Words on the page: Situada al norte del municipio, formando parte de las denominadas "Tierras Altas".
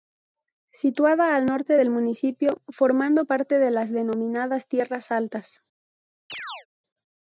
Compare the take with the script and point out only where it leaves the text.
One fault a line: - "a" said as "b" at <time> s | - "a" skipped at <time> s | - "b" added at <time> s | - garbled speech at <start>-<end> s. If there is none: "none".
none